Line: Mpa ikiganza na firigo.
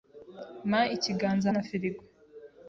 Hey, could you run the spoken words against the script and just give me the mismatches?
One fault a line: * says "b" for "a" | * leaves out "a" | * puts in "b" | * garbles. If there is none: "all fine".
all fine